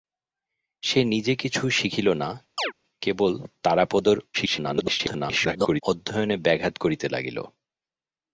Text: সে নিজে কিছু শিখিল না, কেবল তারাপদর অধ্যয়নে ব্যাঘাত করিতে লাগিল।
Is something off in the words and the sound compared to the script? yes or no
yes